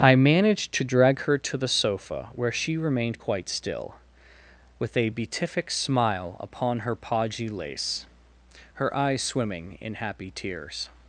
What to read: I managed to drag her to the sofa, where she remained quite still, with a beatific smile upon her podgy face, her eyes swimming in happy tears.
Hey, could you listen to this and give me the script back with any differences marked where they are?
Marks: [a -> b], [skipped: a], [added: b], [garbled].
I managed to drag her to the sofa, where she remained quite still, with a beatific smile upon her podgy [face, -> lace] her eyes swimming in happy tears.